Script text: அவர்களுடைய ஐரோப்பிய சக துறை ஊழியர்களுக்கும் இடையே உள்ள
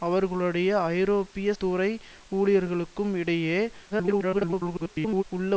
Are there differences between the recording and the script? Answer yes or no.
yes